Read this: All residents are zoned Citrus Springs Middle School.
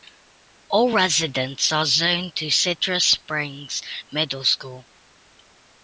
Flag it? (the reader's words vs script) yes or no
yes